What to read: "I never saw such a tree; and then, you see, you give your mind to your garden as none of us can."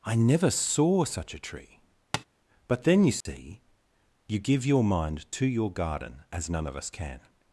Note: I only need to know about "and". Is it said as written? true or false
false